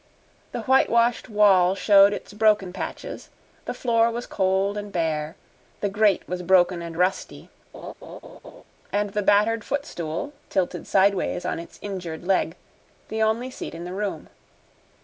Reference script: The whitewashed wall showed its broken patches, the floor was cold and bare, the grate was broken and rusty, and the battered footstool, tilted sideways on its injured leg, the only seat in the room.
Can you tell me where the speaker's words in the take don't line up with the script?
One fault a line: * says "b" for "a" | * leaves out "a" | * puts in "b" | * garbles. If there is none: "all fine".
all fine